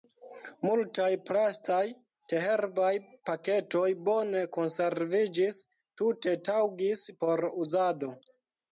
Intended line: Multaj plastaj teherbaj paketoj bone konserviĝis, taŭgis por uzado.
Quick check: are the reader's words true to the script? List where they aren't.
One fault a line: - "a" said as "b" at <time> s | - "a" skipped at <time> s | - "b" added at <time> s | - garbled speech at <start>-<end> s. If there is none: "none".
- "tute" added at 6.0 s